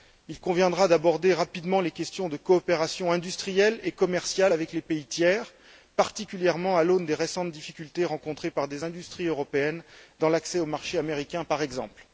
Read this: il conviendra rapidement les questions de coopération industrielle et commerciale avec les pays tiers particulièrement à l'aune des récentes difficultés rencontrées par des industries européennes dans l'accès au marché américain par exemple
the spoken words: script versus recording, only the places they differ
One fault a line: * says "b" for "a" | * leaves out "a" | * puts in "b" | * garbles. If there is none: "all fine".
* puts in "d'aborder"